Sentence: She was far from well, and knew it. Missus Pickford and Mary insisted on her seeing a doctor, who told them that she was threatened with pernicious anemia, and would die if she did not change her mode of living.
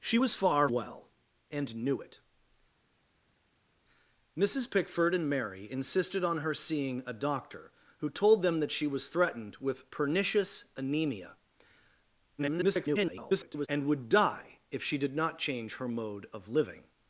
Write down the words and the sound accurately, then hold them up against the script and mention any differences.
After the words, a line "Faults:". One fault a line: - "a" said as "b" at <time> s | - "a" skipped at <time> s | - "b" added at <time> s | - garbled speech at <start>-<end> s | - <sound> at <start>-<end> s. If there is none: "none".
She was far well, and knew it. Missus Pickford and Mary insisted on her seeing a doctor, who told them that she was threatened with pernicious anemia, [garbled] and would die if she did not change her mode of living.
Faults:
- "from" skipped at 0.7 s
- garbled speech at 12.4-13.7 s